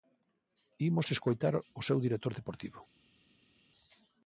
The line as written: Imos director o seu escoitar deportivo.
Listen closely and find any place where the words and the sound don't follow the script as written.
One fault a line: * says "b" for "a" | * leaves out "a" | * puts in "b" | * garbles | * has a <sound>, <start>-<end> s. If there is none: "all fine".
* says "escoitar" for "director"
* says "director" for "escoitar"